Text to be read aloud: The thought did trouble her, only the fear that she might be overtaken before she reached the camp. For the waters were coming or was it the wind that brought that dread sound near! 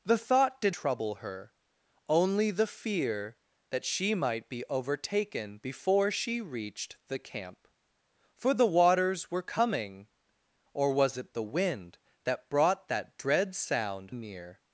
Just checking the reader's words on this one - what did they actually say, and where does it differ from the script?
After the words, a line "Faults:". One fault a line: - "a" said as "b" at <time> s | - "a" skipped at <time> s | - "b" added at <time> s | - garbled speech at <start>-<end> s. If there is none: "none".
The thought did trouble her, only the fear that she might be overtaken before she reached the camp. For the waters were coming or was it the wind that brought that dread sound near!
Faults:
none